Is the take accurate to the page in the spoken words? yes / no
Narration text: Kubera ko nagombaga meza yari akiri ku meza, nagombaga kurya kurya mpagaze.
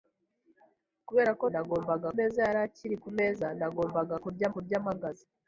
yes